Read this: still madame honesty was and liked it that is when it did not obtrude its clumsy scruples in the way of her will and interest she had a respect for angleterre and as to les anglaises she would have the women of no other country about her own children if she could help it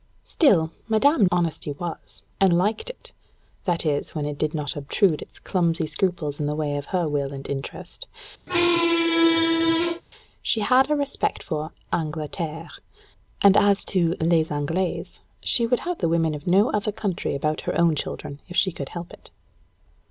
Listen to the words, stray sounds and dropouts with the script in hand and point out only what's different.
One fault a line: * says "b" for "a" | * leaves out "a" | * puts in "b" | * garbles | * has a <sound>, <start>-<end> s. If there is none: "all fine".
* has a squeak, 8.5-10.0 s